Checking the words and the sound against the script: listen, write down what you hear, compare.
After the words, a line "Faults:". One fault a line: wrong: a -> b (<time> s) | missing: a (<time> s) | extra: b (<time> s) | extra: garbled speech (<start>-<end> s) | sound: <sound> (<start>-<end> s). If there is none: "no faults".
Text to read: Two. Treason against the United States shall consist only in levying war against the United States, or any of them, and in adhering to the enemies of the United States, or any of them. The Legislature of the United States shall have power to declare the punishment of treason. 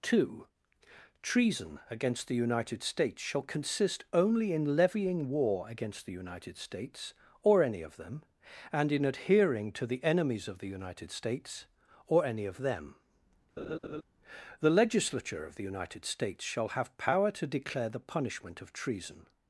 Two. Treason against the United States shall consist only in levying war against the United States, or any of them, and in adhering to the enemies of the United States, or any of them. The Legislature of the United States shall have power to declare the punishment of treason.
Faults:
sound: laugh (13.6-14.0 s)